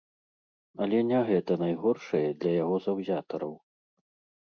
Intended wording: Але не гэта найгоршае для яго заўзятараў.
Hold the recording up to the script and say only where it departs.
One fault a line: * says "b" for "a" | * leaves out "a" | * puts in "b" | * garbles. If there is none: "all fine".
all fine